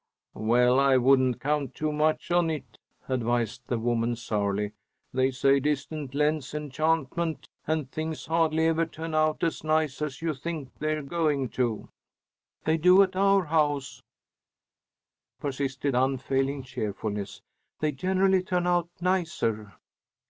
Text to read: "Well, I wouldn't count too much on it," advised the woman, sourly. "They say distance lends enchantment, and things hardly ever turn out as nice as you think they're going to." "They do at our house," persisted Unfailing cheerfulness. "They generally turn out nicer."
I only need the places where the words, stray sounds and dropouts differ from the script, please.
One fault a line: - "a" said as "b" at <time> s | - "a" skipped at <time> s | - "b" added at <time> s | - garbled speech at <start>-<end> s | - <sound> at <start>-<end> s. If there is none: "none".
none